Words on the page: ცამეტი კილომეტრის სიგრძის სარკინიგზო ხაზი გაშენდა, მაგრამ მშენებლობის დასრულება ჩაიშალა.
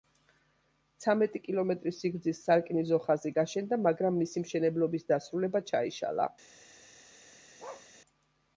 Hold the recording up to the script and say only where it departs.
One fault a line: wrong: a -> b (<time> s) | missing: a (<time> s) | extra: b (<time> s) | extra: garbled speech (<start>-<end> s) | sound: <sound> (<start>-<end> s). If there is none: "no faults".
extra: მისი (4.2 s)
sound: bark (7.6-7.9 s)